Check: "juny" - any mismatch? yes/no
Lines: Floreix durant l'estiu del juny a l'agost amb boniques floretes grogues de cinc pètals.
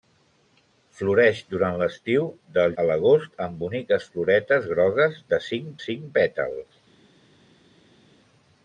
yes